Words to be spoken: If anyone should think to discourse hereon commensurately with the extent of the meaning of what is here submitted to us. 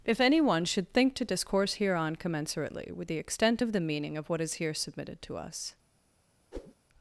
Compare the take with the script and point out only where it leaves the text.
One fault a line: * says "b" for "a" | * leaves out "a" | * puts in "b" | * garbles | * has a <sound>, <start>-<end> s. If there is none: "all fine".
* has a whoosh, 6.5-6.7 s